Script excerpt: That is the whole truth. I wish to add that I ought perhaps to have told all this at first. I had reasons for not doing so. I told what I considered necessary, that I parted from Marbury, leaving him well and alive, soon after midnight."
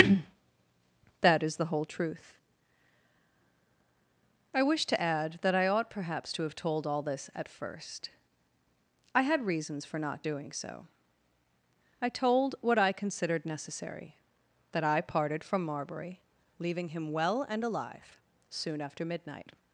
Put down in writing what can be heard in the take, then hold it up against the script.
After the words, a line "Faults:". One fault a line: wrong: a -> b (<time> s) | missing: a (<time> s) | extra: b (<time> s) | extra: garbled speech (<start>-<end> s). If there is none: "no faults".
That is the whole truth. I wish to add that I ought perhaps to have told all this at first. I had reasons for not doing so. I told what I considered necessary, that I parted from Marbury, leaving him well and alive, soon after midnight."
Faults:
no faults